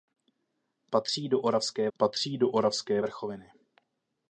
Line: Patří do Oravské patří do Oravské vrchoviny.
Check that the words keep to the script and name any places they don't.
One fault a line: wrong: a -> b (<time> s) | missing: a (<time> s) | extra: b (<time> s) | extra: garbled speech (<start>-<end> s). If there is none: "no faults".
no faults